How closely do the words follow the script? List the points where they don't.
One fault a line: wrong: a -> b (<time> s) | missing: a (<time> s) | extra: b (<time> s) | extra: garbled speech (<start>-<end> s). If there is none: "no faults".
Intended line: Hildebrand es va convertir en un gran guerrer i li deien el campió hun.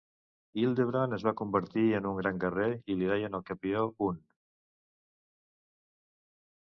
no faults